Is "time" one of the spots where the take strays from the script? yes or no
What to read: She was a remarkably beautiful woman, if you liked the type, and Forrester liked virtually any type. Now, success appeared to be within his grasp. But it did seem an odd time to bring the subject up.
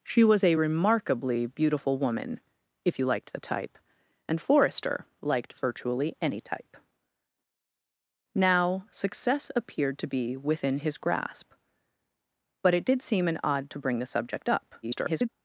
yes